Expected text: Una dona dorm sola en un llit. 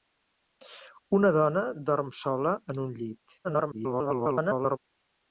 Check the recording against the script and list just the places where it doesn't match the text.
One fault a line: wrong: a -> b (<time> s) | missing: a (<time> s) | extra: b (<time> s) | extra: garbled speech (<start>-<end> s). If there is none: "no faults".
extra: garbled speech (3.4-4.8 s)